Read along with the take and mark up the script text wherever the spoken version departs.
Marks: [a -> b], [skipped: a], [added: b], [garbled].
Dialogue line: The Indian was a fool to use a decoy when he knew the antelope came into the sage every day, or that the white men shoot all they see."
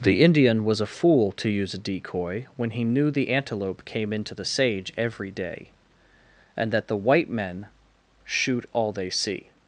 The Indian was a fool to use a decoy when he knew the antelope came into the sage every day, [or -> and] that the white men shoot all they see."